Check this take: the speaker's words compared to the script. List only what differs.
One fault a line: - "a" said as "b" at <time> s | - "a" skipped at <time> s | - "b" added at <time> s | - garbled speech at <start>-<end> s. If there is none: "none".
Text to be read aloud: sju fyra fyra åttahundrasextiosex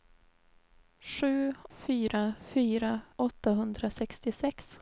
none